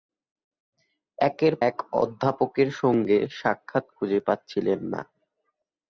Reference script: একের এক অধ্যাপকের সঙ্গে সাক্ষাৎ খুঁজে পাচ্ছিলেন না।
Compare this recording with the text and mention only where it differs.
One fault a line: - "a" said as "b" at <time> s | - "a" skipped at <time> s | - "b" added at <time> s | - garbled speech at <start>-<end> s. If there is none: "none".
none